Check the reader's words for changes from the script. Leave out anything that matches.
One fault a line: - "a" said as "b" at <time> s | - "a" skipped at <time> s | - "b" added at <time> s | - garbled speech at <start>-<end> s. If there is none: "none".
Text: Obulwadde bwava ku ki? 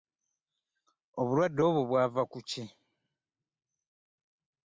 - "obwo" added at 1.7 s